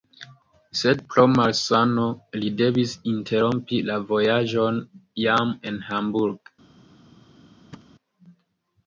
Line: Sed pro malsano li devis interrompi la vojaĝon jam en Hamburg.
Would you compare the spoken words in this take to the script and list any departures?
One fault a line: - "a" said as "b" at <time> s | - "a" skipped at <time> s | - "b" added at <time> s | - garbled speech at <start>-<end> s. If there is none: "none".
none